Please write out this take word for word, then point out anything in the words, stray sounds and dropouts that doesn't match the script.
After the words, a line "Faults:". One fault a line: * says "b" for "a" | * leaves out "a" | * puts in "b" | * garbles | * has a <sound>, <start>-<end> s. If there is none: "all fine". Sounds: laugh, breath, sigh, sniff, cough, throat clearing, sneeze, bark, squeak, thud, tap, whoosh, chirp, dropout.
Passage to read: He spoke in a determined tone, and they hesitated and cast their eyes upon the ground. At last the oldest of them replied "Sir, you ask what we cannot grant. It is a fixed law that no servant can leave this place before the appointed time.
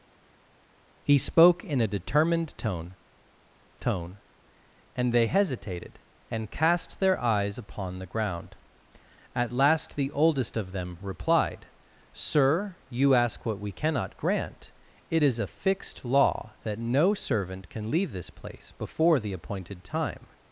He spoke in a determined tone tone, and they hesitated and cast their eyes upon the ground. At last the oldest of them replied "Sir, you ask what we cannot grant. It is a fixed law that no servant can leave this place before the appointed time.
Faults:
* puts in "tone"